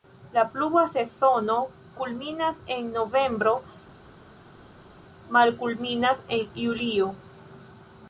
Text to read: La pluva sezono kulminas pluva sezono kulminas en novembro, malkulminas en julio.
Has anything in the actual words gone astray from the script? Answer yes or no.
yes